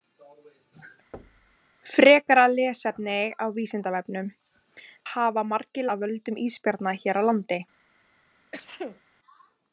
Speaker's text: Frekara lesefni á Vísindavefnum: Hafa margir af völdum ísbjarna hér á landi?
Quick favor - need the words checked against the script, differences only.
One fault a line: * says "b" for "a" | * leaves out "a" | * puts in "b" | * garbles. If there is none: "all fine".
all fine